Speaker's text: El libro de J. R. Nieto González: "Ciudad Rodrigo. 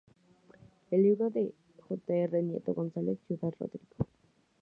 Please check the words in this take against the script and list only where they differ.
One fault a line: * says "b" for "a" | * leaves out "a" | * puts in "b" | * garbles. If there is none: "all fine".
all fine